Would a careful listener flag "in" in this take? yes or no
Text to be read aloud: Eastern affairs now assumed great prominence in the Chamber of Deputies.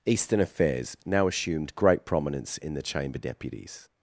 no